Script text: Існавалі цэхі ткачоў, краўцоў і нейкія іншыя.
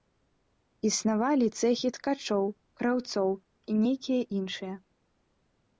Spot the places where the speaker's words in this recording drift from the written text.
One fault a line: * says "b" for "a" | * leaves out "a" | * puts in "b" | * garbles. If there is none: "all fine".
all fine